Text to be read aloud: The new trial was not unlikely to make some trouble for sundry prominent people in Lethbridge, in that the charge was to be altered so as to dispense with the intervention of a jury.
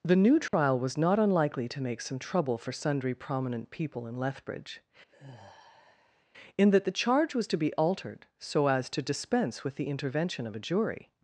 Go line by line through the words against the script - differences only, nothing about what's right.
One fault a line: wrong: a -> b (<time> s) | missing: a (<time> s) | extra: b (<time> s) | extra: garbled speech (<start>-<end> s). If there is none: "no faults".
no faults